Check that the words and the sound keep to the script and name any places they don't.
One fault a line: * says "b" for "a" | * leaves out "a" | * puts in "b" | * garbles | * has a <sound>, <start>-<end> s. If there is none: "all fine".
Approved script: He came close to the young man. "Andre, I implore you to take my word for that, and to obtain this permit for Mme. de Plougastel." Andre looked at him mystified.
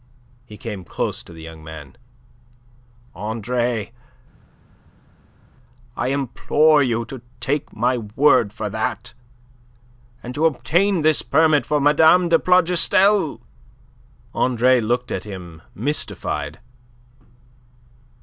all fine